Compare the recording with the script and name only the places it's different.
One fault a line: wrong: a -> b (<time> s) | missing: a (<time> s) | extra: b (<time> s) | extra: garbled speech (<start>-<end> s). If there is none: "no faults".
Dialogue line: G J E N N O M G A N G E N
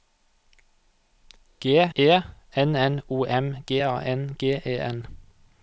missing: J (1.9 s)